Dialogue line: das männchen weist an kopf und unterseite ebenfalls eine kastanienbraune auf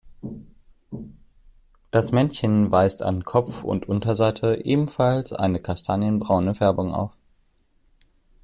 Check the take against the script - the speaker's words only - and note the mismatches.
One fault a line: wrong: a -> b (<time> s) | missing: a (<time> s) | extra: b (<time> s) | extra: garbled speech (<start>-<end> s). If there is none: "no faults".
extra: färbung (6.5 s)